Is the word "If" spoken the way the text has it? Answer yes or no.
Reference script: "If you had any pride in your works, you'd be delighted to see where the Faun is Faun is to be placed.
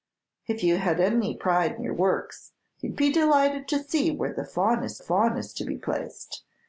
yes